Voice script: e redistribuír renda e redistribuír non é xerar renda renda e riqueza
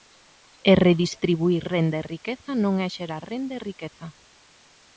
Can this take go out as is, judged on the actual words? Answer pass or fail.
fail